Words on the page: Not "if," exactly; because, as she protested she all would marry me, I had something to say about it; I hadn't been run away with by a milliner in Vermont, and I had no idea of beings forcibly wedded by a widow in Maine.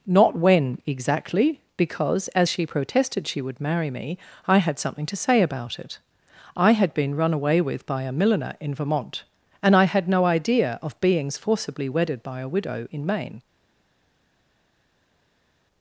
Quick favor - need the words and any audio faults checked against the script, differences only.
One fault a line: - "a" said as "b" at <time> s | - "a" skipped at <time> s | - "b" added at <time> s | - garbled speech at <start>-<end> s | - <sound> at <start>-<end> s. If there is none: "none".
- "if" said as "when" at 0.3 s
- "all" skipped at 3.4 s
- "hadn't" said as "had" at 6.7 s